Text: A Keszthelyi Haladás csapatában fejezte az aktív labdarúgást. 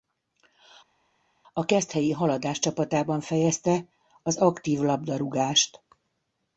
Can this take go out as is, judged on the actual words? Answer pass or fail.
pass